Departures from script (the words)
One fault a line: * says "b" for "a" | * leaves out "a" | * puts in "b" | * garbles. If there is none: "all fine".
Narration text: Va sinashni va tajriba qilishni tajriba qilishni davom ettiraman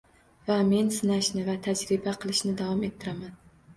* puts in "men"
* leaves out "tajriba qilishni"